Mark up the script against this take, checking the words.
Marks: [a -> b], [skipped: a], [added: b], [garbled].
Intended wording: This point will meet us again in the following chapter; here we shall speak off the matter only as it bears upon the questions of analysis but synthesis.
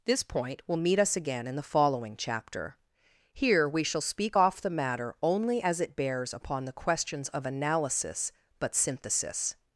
This point will meet us again in the following chapter; here we shall speak off the matter only as it bears upon the questions of analysis but synthesis.